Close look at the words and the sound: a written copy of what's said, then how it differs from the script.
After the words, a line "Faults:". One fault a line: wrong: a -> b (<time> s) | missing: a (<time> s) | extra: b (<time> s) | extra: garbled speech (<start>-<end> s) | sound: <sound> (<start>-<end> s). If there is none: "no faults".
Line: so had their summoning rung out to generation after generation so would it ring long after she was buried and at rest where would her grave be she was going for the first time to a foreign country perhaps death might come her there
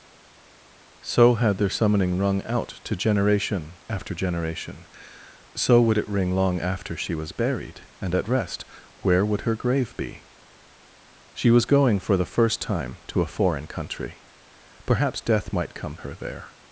so had their summoning rung out to generation after generation so would it ring long after she was buried and at rest where would her grave be she was going for the first time to a foreign country perhaps death might come her there
Faults:
no faults